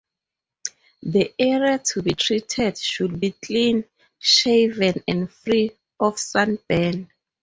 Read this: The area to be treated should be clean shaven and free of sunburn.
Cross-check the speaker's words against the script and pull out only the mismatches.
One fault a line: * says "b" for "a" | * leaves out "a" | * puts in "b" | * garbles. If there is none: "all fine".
all fine